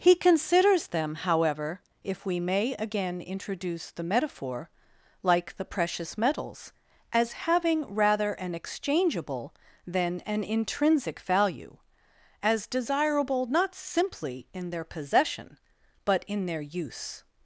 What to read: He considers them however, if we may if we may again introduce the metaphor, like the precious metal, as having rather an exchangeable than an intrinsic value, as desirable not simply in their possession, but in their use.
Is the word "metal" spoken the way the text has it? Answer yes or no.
no